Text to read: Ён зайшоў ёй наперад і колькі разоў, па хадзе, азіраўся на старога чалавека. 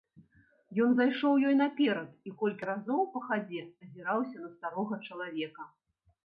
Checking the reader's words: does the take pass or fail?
pass